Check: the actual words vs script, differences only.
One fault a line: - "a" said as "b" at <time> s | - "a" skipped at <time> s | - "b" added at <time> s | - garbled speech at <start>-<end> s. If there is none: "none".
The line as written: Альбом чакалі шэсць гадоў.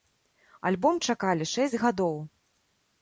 none